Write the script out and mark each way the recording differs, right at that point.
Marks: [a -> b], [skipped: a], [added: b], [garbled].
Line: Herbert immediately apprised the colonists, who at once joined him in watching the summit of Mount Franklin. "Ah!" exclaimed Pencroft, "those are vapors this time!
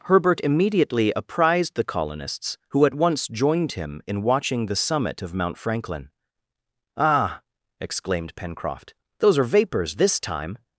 Herbert immediately apprised the colonists, who at once joined him in watching the summit of Mount Franklin. "Ah!" exclaimed Pencroft, "those are vapors this time!